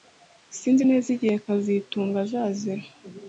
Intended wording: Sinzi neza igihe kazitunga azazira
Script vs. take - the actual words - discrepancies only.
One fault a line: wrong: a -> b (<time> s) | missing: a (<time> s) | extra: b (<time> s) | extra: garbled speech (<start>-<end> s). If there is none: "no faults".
no faults